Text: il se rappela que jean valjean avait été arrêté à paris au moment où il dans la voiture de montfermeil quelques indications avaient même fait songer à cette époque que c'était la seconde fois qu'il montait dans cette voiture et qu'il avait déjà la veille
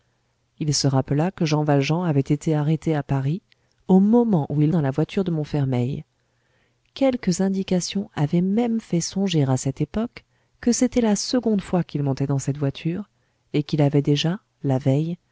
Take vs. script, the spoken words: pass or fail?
pass